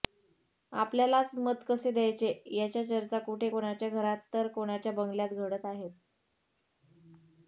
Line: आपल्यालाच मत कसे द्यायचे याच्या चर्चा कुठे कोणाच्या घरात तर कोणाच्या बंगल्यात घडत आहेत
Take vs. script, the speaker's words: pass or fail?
pass